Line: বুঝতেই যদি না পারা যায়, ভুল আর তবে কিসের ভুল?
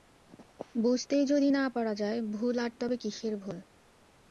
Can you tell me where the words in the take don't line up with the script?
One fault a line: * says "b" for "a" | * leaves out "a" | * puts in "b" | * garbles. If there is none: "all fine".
all fine